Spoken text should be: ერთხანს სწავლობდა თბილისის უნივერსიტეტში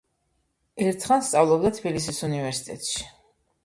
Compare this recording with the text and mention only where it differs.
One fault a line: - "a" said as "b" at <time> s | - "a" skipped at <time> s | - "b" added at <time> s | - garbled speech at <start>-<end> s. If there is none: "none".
none